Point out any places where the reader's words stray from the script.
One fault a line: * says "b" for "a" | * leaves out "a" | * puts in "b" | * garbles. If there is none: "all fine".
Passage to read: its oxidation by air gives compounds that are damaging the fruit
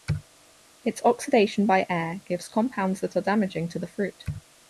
* puts in "to"